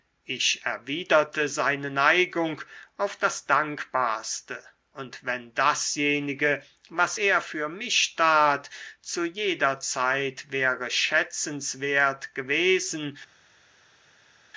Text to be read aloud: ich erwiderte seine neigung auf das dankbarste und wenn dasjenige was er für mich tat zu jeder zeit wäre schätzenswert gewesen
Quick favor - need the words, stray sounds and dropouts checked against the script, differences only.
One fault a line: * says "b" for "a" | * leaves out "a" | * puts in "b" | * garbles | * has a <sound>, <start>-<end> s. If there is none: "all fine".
all fine